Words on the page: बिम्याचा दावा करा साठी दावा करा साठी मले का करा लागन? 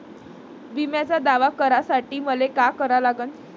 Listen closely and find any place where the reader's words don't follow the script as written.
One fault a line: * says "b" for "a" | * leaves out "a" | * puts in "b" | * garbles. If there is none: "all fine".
* leaves out "दावा करा साठी"